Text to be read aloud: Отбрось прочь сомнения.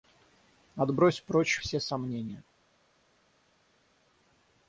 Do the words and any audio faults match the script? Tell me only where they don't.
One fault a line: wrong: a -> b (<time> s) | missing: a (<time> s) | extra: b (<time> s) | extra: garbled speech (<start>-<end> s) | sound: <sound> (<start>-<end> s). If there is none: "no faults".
extra: все (1.6 s)